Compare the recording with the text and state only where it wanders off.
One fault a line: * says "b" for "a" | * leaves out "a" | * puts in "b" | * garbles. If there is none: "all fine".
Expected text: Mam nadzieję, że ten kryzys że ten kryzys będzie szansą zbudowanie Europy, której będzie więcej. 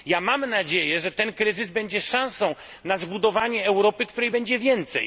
* leaves out "że ten kryzys"
* puts in "na"